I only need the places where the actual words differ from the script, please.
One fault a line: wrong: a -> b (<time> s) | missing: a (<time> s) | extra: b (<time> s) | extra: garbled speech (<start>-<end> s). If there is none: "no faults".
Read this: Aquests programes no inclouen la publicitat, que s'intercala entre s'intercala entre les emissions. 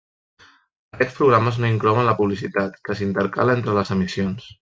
missing: s'intercala entre (3.8 s)